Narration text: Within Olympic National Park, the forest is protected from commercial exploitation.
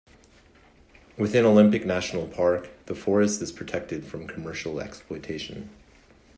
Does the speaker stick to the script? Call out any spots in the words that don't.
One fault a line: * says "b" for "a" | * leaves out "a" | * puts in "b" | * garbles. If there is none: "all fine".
all fine